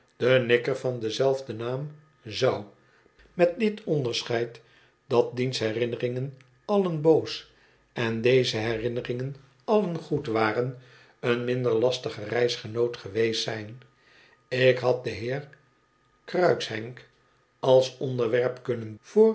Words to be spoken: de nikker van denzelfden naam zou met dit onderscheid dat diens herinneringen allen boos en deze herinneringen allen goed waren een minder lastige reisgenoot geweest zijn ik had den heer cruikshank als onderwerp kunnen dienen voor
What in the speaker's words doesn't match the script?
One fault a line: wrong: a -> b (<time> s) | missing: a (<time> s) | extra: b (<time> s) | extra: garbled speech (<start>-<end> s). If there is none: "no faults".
missing: dienen (18.9 s)